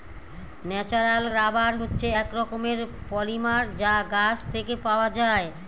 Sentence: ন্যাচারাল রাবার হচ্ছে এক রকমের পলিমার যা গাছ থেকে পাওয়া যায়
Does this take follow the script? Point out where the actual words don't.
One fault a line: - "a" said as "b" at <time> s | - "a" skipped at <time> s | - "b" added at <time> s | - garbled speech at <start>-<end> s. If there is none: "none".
none